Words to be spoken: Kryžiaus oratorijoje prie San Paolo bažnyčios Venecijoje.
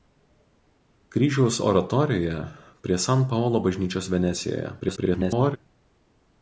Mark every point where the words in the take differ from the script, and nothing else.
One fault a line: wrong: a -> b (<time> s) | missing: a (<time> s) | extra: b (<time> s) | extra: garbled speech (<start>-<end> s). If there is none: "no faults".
extra: garbled speech (4.8-5.6 s)